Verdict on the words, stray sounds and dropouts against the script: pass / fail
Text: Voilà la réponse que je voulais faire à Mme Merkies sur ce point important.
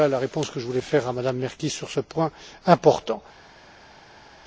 pass